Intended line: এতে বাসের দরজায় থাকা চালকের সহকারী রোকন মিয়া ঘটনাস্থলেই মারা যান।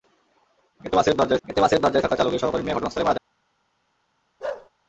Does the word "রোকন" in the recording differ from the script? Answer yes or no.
yes